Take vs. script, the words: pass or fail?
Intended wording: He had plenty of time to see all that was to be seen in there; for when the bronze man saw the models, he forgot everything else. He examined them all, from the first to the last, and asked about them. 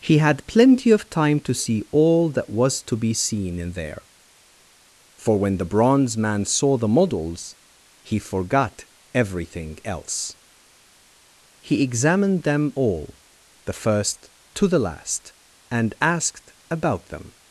fail